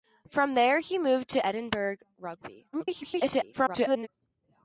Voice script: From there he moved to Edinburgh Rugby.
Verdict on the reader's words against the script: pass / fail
fail